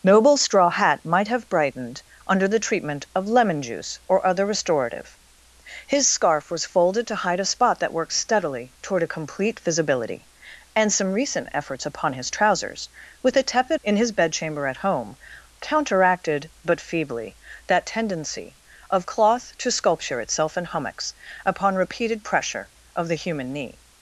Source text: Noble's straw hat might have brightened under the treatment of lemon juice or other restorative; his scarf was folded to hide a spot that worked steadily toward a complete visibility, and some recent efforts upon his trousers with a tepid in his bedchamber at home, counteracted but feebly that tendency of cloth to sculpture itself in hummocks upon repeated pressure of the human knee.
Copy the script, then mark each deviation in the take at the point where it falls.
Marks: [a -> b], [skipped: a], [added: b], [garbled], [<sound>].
Noble's straw hat might have brightened under the treatment of lemon juice or other restorative; his scarf was folded to hide a spot that worked steadily toward a complete visibility, and some recent efforts upon his trousers with a tepid in his bedchamber at home, counteracted but feebly that tendency of cloth to sculpture itself in hummocks upon repeated pressure of the human knee.